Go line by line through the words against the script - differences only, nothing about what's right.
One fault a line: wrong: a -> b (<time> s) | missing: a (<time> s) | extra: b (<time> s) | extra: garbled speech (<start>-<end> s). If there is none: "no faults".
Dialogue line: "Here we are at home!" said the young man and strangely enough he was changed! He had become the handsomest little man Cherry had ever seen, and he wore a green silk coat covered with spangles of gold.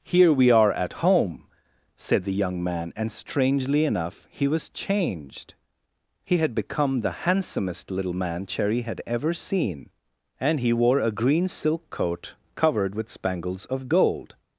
no faults